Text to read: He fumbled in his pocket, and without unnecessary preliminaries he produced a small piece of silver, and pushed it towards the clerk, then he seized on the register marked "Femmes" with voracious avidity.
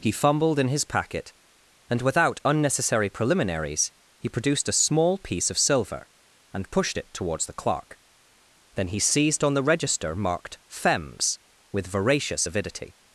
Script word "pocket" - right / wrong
wrong